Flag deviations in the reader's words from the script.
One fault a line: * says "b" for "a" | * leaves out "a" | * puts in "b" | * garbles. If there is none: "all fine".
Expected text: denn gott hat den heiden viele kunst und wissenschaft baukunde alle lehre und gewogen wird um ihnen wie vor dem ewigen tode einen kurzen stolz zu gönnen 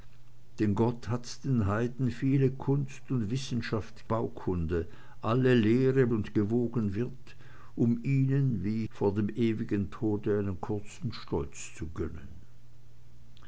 all fine